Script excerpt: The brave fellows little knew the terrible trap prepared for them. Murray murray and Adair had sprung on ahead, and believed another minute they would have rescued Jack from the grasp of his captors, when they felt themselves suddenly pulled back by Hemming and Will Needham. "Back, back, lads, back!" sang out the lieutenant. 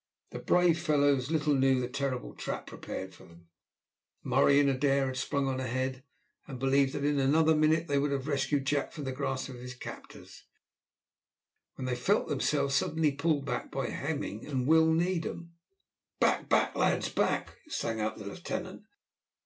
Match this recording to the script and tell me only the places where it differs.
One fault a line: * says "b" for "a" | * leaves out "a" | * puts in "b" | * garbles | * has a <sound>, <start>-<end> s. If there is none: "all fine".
* leaves out "murray"
* puts in "that in"